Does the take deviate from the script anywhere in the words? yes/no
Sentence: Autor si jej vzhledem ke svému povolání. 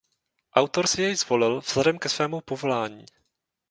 yes